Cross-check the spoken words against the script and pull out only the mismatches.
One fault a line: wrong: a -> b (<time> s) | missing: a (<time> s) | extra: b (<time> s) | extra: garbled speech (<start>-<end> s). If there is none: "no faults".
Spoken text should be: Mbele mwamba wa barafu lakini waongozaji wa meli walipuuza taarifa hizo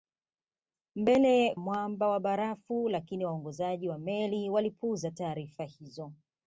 no faults